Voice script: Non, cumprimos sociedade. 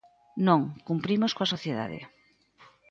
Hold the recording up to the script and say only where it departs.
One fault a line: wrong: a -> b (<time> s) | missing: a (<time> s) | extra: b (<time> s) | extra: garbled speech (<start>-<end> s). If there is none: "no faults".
extra: coa (1.4 s)